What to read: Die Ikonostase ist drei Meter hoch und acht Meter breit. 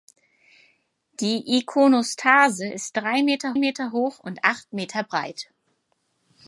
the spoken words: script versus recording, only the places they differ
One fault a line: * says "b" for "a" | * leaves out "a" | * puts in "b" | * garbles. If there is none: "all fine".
* puts in "Meter"